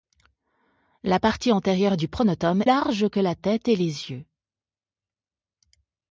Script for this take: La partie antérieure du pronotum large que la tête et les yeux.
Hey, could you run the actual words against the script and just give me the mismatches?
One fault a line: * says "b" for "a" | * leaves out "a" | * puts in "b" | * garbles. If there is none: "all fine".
all fine